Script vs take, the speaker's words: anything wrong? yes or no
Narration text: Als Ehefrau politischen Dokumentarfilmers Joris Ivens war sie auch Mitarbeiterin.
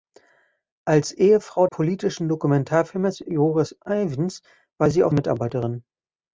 no